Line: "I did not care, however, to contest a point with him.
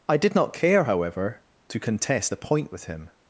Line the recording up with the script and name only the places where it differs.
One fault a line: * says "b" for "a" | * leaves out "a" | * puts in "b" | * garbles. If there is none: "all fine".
all fine